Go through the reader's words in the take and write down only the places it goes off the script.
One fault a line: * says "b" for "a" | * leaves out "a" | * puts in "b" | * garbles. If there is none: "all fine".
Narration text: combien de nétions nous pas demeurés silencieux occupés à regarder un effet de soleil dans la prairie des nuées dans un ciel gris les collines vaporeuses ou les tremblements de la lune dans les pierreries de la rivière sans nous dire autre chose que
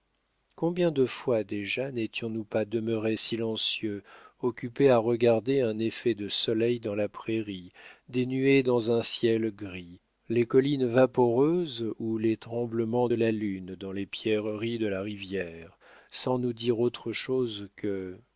* puts in "fois déjà"